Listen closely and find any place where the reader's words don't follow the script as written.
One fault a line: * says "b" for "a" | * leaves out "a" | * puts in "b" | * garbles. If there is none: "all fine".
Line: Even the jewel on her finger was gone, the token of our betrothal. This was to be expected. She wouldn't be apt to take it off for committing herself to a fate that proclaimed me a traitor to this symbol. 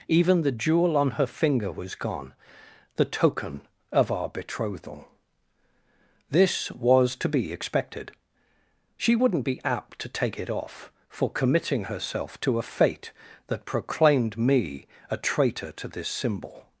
all fine